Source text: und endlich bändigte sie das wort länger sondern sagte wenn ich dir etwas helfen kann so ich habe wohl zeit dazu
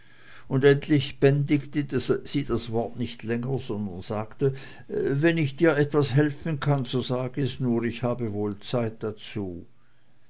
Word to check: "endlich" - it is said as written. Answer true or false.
true